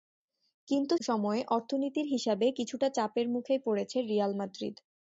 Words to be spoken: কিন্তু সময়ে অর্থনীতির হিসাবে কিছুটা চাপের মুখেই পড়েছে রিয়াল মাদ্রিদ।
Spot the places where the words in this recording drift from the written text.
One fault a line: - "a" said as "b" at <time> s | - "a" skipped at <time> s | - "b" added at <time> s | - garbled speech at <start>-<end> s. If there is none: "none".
none